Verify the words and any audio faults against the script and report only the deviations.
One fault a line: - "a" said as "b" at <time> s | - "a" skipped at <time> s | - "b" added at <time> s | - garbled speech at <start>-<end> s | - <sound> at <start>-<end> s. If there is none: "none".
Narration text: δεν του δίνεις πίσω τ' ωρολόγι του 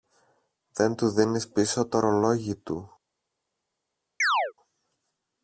- chirp at 4.2-4.5 s